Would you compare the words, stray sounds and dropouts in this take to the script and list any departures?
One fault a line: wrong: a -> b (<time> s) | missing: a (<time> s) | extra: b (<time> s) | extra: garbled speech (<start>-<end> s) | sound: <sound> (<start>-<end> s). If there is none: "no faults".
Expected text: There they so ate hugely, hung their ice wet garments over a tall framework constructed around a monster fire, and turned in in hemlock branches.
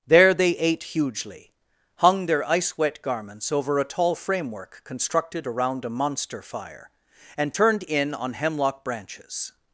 missing: so (0.5 s)
wrong: in -> on (8.1 s)